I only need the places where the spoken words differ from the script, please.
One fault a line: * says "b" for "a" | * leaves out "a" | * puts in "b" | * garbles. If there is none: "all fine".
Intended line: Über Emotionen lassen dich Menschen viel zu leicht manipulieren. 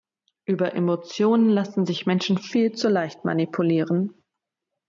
* says "sich" for "dich"